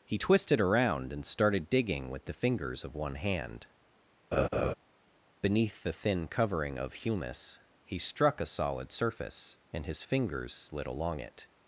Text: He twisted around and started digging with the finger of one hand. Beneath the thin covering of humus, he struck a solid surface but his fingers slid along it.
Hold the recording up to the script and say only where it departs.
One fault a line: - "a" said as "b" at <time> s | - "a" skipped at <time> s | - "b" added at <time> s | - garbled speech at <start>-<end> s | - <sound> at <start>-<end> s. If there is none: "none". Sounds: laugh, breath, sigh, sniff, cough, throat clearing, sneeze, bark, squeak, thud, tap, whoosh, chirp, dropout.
- "finger" said as "fingers" at 2.3 s
- laugh at 4.3-4.7 s
- "but" said as "and" at 9.7 s